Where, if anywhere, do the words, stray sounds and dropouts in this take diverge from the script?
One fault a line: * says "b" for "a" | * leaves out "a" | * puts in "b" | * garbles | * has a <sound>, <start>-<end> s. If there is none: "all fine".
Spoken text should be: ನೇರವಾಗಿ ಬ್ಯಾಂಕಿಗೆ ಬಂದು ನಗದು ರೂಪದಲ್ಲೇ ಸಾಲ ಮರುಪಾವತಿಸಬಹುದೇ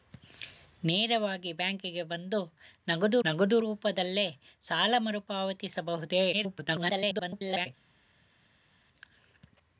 * puts in "ನಗದು"
* garbles